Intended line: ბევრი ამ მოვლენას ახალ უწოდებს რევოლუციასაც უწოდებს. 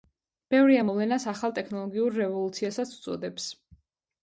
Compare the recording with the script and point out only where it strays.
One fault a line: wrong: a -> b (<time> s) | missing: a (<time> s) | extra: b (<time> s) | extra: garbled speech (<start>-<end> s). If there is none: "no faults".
wrong: უწოდებს -> ტექნოლოგიურ (1.6 s)